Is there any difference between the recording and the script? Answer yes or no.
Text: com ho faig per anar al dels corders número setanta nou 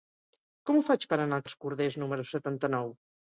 no